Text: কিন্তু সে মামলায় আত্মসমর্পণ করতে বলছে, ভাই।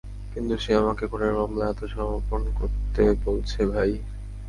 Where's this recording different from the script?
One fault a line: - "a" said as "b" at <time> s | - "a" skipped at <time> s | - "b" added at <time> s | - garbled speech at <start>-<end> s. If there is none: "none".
- "আমাকে খুনের" added at 0.8 s